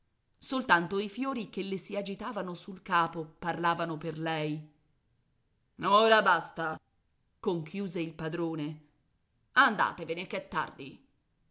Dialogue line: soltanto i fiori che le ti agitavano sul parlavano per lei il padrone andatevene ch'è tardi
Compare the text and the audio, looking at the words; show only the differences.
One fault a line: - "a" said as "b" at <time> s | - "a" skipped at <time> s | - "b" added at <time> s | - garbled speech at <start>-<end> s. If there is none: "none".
- "ti" said as "si" at 1.8 s
- "capo" added at 2.8 s
- "ora basta conchiuse" added at 5.8 s